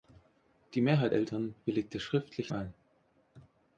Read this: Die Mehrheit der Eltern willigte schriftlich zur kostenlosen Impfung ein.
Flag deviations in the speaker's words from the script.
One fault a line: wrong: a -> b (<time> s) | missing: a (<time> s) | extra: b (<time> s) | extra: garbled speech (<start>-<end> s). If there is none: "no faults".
missing: der (1.1 s)
missing: zur kostenlosen Impfung (2.5 s)